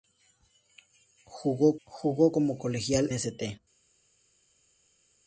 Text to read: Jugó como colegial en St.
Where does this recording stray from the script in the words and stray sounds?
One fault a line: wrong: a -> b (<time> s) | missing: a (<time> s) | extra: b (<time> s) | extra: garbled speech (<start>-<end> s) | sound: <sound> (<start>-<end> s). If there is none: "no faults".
extra: jugó (1.9 s)
missing: en (3.1 s)